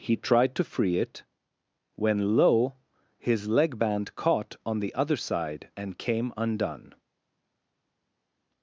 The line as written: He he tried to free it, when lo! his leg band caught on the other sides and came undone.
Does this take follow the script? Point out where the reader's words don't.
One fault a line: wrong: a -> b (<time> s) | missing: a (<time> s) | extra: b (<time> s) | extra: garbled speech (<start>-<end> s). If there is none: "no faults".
missing: he (0.1 s)
wrong: sides -> side (5.2 s)